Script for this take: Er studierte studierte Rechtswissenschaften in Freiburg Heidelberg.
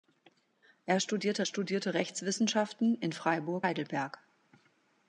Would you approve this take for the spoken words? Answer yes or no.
yes